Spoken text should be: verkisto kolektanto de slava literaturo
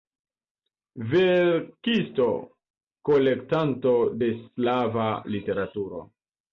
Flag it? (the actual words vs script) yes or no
no